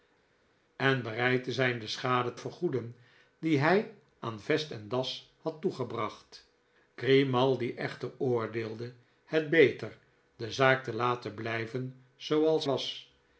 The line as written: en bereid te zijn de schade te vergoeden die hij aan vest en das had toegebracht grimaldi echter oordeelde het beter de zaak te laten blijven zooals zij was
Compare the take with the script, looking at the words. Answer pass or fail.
fail